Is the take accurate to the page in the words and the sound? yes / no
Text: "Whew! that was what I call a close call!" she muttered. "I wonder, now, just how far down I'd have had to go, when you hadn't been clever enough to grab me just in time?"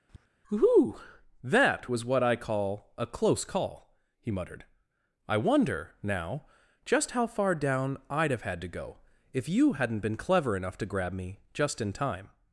no